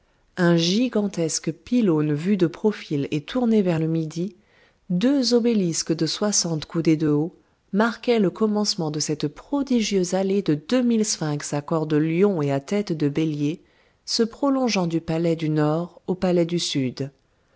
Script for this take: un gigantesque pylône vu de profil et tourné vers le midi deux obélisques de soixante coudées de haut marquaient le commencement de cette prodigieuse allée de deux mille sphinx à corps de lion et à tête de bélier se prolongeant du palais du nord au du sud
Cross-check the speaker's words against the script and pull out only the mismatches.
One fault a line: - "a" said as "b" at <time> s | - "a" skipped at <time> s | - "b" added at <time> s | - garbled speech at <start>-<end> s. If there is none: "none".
- "palais" added at 16.1 s